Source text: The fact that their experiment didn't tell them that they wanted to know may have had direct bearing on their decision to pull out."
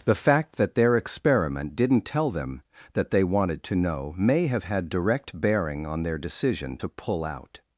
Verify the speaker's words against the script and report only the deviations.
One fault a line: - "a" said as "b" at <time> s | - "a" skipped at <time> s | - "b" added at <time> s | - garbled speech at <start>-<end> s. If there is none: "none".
none